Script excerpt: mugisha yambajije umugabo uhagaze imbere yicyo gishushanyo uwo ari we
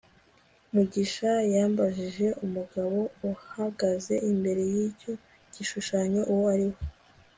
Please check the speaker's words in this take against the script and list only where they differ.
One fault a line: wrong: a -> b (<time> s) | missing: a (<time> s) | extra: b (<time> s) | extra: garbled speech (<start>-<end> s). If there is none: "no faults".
no faults